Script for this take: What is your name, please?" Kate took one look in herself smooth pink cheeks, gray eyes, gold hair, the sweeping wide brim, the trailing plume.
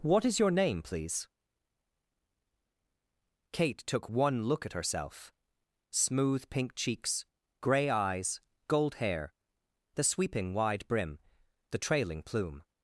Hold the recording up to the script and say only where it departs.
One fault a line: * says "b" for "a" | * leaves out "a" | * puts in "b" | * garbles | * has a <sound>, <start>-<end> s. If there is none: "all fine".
* says "at" for "in"